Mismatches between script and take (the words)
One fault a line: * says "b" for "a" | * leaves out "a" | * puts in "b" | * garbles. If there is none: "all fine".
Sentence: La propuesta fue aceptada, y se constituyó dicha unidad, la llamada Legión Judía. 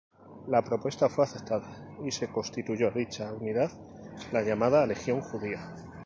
all fine